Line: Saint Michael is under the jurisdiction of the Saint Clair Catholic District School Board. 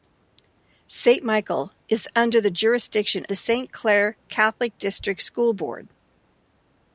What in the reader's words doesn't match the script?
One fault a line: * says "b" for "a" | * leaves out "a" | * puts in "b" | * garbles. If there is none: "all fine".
* leaves out "of"